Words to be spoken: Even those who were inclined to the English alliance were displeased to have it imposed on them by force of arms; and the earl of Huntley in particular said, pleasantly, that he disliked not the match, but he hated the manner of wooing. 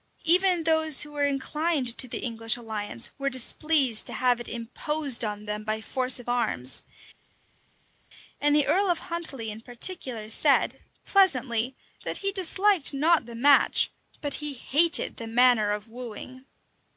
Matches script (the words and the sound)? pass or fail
pass